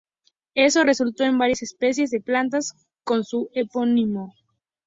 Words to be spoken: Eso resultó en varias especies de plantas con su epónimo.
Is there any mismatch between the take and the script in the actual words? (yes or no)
no